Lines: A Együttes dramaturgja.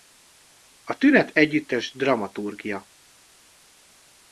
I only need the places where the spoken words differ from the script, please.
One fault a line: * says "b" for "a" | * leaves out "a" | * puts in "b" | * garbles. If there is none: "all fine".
* puts in "Tünet"